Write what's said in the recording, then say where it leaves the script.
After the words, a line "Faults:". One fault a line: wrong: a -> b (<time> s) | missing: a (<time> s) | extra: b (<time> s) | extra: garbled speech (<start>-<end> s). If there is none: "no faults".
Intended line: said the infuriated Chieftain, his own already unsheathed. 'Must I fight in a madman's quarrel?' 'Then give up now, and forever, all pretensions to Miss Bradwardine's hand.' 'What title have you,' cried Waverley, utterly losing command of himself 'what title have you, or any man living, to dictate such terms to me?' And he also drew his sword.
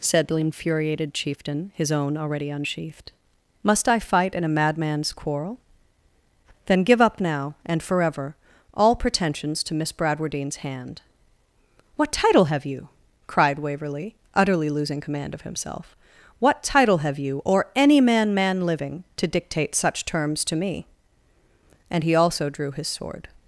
said the infuriated Chieftain, his own already unsheathed. 'Must I fight in a madman's quarrel?' 'Then give up now, and forever, all pretensions to Miss Bradwardine's hand.' 'What title have you,' cried Waverley, utterly losing command of himself 'what title have you, or any man man living, to dictate such terms to me?' And he also drew his sword.
Faults:
extra: man (18.3 s)